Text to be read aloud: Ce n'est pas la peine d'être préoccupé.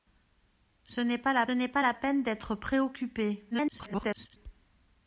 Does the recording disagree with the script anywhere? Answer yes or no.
yes